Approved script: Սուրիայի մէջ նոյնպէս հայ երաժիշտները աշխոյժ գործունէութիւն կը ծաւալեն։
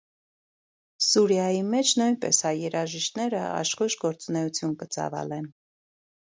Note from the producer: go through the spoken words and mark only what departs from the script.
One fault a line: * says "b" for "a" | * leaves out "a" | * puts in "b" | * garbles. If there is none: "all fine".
all fine